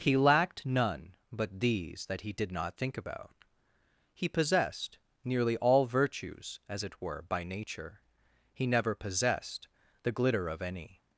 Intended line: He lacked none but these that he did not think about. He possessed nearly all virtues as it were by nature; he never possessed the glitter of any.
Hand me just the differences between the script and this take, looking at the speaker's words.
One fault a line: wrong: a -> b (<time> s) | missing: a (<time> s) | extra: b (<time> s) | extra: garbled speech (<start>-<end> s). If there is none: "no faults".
no faults